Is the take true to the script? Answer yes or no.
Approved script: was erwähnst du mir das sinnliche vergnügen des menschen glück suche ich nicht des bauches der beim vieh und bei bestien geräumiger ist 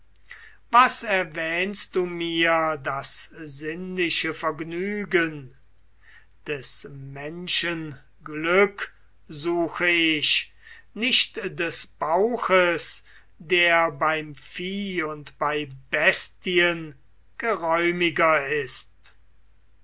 yes